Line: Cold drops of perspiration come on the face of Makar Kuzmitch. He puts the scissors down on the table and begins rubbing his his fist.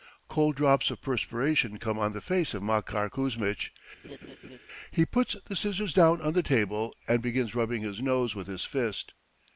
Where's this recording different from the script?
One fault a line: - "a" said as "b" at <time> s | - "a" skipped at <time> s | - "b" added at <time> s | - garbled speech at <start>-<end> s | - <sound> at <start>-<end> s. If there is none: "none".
- laugh at 4.0-4.6 s
- "nose with" added at 8.0 s